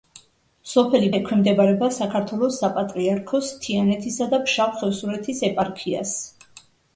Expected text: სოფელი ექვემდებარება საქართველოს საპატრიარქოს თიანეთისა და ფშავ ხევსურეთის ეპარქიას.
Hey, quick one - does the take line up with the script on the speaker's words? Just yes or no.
yes